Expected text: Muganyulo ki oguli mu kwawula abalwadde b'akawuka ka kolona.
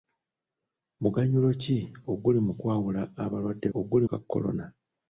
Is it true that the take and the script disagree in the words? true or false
true